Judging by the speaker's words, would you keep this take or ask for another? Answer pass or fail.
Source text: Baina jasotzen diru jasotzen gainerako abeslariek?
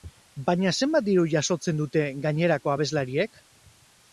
fail